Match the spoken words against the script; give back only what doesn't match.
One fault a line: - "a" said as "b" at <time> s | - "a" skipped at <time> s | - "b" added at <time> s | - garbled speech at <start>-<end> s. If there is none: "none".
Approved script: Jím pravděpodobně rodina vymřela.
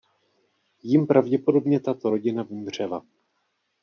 - "tato" added at 1.8 s